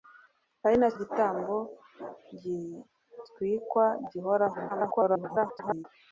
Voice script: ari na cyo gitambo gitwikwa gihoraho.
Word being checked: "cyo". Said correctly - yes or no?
no